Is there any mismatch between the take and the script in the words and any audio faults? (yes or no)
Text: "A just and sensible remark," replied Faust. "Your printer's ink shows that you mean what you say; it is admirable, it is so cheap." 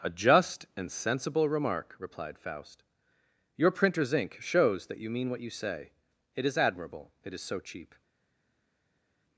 no